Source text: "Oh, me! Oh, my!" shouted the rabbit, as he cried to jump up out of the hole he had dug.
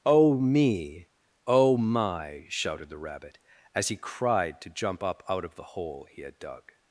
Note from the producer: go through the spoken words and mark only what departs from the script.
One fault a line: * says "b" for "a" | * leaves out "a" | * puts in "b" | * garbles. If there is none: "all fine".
all fine